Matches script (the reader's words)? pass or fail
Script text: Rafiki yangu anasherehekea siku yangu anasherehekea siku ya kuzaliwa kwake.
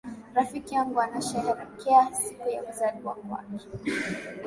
fail